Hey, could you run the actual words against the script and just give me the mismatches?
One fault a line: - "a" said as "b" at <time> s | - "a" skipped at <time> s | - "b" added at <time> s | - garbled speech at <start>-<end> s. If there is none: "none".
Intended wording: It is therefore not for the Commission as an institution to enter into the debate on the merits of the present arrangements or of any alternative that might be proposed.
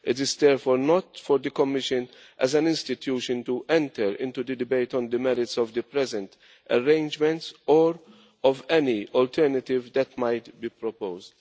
none